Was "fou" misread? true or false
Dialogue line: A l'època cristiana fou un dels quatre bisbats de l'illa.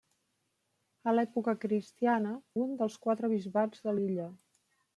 true